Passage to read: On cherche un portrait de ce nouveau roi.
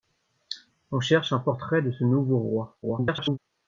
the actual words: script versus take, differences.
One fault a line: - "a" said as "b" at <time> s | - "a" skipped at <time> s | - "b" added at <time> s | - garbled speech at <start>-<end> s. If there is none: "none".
- garbled speech at 2.8-3.4 s